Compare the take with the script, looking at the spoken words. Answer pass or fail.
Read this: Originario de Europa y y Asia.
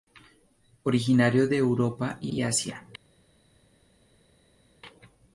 pass